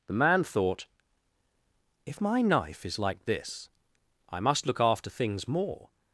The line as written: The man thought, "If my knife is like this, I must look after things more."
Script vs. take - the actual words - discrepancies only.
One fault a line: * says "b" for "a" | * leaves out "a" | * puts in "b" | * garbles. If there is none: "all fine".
all fine